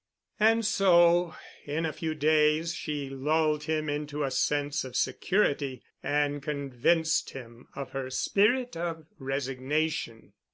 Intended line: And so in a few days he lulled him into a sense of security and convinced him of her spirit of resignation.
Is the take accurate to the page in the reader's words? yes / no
no